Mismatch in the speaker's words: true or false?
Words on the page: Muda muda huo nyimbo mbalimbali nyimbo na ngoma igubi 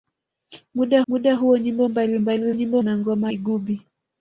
false